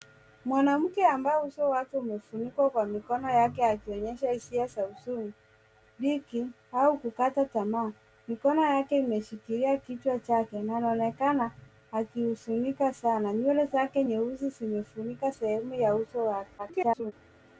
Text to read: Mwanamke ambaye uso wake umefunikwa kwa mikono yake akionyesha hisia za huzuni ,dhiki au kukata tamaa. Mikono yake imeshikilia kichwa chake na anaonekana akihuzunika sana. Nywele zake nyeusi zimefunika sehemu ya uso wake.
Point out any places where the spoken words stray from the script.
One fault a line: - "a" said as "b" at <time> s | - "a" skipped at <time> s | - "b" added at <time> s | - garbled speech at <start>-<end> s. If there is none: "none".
- garbled speech at 16.6-17.1 s